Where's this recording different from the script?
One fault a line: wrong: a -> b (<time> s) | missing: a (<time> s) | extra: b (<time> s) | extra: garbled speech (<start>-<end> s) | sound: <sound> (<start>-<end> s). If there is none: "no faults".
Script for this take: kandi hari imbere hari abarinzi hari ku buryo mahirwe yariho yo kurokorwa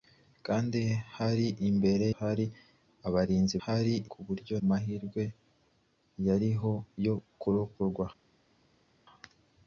no faults